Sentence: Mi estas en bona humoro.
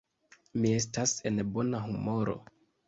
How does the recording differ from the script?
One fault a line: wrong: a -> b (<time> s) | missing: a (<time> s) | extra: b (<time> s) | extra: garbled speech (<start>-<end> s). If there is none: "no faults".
no faults